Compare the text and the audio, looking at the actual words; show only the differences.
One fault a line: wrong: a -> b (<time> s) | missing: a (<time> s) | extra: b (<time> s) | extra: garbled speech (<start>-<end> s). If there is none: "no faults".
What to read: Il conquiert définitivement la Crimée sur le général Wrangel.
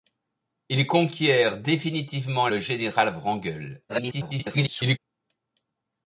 missing: la Crimée sur (2.5 s)
extra: garbled speech (3.9-5.0 s)